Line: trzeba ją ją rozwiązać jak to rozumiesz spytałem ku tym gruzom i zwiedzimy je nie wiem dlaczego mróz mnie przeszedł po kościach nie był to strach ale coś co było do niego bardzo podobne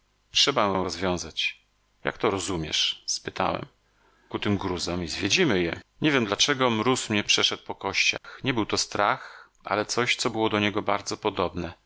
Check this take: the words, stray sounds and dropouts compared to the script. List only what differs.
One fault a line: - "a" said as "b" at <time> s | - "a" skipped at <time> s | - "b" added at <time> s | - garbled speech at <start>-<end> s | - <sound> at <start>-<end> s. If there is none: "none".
- dropout at 8.2-8.2 s